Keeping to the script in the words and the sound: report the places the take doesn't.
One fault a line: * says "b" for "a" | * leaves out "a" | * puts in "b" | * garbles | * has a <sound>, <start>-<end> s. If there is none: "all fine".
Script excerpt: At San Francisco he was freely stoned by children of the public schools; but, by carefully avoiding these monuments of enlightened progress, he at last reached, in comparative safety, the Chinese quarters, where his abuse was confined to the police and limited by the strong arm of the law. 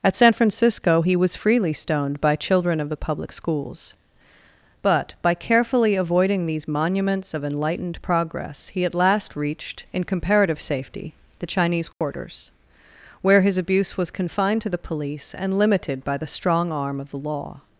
* has a dropout, 11.9-12.0 s